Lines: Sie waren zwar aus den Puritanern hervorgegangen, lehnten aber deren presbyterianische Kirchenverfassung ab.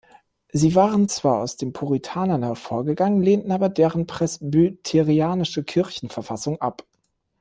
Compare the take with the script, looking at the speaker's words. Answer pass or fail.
pass